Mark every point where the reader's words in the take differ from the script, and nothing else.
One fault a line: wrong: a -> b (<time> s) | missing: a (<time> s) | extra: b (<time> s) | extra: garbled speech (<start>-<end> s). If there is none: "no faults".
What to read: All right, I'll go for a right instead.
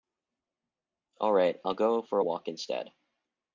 wrong: right -> walk (2.2 s)